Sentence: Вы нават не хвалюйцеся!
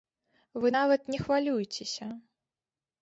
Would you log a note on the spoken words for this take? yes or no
no